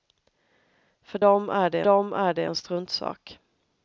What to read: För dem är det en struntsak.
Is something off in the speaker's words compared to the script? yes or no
yes